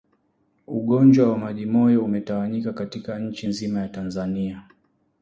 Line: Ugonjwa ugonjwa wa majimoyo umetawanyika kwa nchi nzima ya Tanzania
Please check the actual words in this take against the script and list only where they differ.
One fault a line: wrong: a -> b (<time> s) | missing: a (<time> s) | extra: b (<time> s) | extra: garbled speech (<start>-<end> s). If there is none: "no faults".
missing: ugonjwa (1.3 s)
wrong: kwa -> katika (2.7 s)